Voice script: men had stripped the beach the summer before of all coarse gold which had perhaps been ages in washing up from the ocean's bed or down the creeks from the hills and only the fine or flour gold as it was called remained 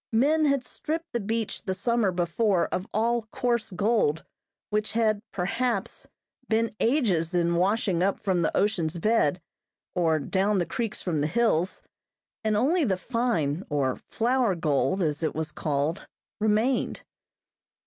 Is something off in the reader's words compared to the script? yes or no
no